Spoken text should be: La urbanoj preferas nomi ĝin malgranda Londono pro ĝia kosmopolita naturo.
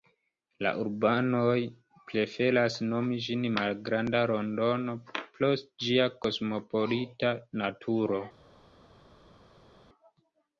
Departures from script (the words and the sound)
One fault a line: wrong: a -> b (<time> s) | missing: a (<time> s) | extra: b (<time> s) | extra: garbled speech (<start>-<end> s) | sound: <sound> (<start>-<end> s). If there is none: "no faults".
no faults